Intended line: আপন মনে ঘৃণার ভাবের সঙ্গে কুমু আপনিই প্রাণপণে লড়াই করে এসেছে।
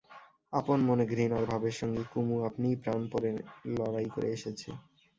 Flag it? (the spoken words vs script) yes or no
no